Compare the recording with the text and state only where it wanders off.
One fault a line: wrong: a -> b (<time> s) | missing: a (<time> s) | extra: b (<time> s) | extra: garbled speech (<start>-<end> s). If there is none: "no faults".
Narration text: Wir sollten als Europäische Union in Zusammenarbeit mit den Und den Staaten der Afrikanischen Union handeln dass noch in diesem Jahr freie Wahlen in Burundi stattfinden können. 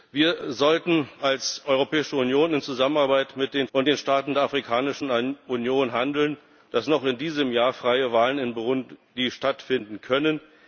no faults